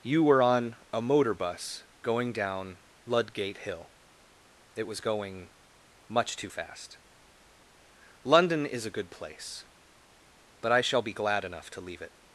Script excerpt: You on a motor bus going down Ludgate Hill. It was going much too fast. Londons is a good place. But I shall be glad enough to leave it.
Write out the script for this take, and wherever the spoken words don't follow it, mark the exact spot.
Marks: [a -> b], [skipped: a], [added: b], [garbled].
You [added: were] on a motor bus going down Ludgate Hill. It was going much too fast. [Londons -> London] is a good place. But I shall be glad enough to leave it.